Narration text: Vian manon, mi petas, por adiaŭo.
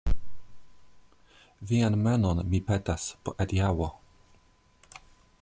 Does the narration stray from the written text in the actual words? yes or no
no